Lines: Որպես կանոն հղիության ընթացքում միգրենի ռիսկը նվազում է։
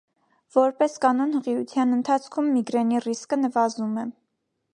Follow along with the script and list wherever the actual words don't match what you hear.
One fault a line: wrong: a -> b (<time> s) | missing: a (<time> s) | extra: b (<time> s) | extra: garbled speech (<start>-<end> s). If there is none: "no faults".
no faults